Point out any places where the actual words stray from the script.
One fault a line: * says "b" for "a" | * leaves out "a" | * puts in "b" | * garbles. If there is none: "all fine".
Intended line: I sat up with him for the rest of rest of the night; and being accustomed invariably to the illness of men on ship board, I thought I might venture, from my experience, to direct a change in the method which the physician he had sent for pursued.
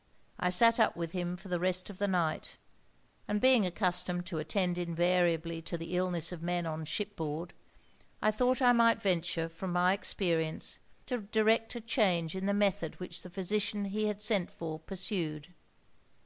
* leaves out "rest of"
* puts in "to attend"